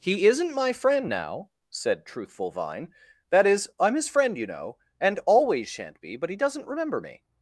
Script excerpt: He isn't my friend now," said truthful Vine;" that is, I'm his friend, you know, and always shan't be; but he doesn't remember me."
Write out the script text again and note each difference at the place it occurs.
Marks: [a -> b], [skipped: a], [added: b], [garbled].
He isn't my friend now," said truthful Vine;" that is, I'm his friend, you know, and always shan't be; but he doesn't remember me."